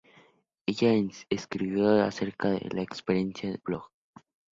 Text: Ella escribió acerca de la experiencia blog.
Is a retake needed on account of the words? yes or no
no